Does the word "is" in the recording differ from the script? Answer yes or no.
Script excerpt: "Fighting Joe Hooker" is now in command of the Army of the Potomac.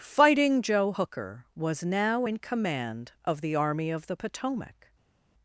yes